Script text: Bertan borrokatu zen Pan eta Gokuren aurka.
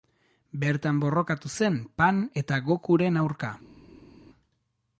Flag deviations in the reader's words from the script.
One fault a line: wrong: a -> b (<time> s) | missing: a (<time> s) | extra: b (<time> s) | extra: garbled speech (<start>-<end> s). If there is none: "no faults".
no faults